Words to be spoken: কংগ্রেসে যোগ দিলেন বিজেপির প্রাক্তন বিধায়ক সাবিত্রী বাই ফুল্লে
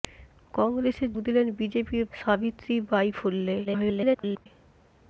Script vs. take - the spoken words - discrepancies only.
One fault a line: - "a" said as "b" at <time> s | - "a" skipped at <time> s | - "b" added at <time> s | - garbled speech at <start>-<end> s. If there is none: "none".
- "যোগ" skipped at 1.1 s
- "প্রাক্তন বিধায়ক" skipped at 2.0 s
- garbled speech at 3.6-4.5 s